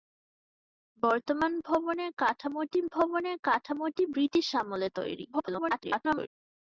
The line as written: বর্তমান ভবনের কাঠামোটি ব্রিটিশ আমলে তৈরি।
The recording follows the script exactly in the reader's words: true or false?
false